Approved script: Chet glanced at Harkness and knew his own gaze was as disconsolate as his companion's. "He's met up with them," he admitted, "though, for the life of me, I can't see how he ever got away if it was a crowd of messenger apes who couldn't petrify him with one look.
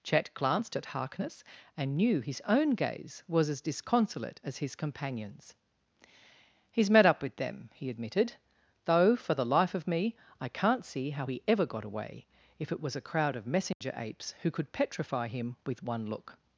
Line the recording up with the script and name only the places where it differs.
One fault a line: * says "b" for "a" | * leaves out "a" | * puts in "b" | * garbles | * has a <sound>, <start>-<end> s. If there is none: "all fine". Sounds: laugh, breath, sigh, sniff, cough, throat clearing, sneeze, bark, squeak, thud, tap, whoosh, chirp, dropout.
* has a dropout, 13.7-13.8 s
* says "could" for "couldn't"